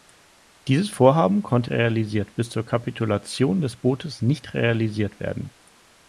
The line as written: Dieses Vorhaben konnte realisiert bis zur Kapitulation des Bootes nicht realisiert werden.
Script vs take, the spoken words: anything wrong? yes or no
no